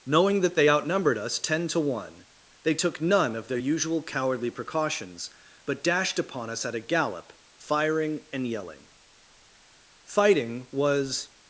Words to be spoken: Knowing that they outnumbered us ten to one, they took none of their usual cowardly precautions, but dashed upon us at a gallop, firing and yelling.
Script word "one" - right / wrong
right